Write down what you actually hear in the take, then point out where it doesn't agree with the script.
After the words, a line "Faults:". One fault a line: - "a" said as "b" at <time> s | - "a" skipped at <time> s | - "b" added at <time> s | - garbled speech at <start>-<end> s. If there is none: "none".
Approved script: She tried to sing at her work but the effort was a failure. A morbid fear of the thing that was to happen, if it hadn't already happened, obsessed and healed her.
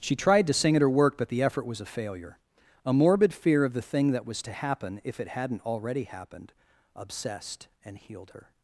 She tried to sing at her work but the effort was a failure. A morbid fear of the thing that was to happen, if it hadn't already happened, obsessed and healed her.
Faults:
none